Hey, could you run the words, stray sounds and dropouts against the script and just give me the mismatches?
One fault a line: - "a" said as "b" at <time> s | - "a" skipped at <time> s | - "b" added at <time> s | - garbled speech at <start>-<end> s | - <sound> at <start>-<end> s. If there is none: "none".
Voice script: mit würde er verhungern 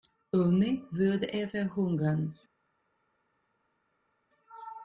- "mit" said as "ohne" at 0.3 s